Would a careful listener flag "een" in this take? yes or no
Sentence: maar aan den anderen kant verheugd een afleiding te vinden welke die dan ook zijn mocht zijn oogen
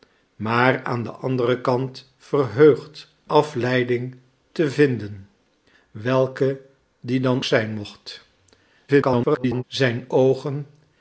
yes